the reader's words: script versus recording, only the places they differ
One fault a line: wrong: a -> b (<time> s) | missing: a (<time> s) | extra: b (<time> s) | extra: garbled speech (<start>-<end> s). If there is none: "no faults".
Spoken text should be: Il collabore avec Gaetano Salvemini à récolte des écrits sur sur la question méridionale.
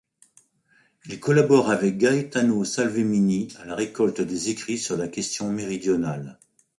extra: la (3.6 s)
missing: sur (5.0 s)